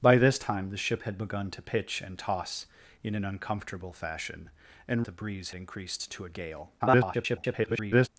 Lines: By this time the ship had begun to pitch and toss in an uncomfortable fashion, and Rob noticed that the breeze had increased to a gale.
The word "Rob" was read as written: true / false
false